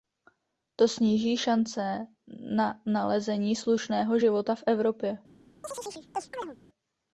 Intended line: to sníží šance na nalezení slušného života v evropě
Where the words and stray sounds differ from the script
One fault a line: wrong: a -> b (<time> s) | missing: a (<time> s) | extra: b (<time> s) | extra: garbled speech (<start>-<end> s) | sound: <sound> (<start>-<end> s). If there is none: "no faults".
sound: chirp (5.6-6.6 s)